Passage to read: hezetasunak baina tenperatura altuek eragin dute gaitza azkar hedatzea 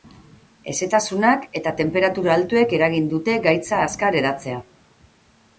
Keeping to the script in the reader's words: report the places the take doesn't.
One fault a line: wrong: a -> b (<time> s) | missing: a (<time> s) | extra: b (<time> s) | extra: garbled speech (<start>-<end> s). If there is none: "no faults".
wrong: baina -> eta (1.6 s)